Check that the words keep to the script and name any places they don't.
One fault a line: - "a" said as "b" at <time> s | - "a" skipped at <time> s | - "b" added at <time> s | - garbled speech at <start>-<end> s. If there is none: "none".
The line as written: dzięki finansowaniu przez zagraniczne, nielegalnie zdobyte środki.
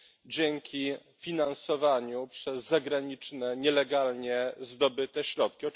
none